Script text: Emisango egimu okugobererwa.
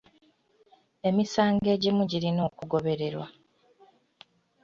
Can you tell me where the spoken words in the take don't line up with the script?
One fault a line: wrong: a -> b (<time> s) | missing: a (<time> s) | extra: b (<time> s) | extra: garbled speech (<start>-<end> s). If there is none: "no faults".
extra: girina (2.1 s)